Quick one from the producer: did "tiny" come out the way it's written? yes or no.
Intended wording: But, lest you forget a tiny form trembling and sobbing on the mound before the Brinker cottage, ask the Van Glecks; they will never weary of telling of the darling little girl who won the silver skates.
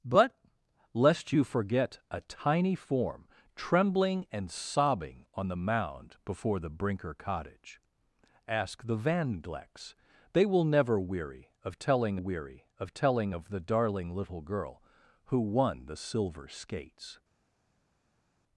yes